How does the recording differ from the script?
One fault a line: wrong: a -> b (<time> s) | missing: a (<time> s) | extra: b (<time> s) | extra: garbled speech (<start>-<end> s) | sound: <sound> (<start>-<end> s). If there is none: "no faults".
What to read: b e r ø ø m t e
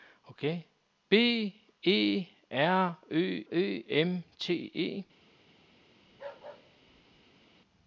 sound: bark (6.1-7.5 s)